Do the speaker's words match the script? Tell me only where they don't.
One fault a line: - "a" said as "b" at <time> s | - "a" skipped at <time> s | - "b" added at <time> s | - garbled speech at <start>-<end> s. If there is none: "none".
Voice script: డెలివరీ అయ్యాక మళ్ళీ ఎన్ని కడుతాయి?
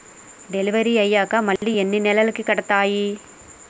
- "నెలలకి" added at 2.0 s